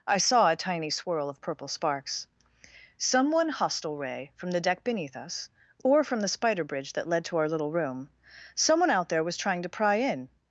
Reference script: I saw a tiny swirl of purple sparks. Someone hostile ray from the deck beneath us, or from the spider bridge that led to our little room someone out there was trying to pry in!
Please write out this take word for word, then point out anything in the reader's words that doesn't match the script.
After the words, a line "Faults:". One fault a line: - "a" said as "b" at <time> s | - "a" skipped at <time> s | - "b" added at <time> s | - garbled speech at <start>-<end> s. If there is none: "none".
I saw a tiny swirl of purple sparks. Someone hostile ray from the deck beneath us, or from the spider bridge that led to our little room someone out there was trying to pry in!
Faults:
none